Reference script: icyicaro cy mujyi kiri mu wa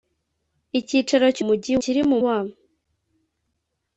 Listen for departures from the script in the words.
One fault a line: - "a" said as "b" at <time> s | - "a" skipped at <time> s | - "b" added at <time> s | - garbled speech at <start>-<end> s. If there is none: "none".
none